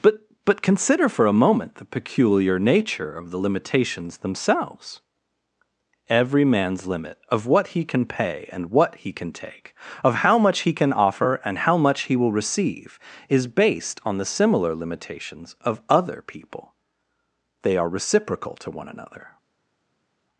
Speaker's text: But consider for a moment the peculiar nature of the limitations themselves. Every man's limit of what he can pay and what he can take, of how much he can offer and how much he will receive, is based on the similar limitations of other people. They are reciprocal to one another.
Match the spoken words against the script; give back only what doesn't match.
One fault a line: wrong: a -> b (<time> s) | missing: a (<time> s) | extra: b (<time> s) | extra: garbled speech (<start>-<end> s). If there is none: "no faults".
extra: but (0.4 s)